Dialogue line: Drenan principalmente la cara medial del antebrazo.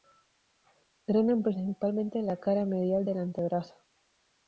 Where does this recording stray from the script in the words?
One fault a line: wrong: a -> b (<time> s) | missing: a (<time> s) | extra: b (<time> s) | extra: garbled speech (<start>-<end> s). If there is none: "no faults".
no faults